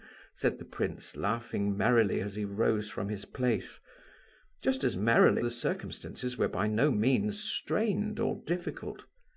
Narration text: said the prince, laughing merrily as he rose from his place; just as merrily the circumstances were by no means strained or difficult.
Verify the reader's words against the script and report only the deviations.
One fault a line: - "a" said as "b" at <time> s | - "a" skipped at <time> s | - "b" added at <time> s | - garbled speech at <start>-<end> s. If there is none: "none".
none